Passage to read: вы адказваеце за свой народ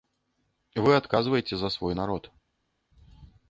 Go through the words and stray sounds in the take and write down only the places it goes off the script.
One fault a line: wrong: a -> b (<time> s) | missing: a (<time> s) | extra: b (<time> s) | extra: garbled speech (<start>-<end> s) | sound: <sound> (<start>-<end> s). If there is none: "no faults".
no faults